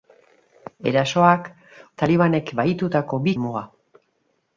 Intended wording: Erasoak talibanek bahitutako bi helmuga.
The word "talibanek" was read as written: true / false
true